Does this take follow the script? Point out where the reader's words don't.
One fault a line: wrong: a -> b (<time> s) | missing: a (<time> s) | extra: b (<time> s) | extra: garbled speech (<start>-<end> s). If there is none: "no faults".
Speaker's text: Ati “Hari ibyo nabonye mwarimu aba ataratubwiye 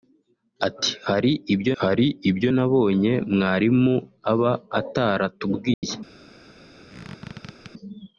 extra: hari ibyo (1.8 s)